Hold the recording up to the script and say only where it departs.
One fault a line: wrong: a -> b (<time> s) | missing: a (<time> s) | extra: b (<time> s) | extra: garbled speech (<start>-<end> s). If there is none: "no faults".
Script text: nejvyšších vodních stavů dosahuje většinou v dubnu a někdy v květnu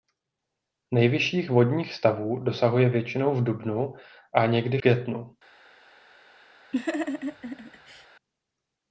missing: v (4.8 s)